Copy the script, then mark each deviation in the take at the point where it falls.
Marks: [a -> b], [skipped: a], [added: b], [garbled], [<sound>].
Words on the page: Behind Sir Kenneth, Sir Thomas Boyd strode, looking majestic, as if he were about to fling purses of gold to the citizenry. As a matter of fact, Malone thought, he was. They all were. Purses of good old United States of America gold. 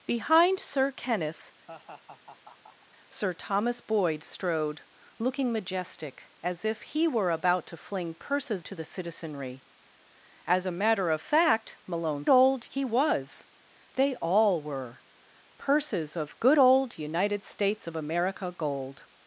Behind Sir Kenneth, [laugh] Sir Thomas Boyd strode, looking majestic, as if he were about to fling purses [skipped: of gold] to the citizenry. As a matter of fact, Malone [thought, -> old] he was. They all were. Purses of good old United States of America gold.